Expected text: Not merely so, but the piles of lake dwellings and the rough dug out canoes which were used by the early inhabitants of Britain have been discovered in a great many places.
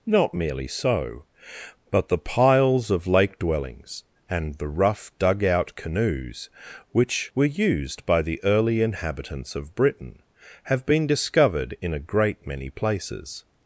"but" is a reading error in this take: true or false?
false